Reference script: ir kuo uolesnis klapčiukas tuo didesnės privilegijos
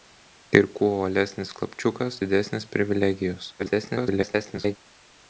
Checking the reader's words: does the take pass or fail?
fail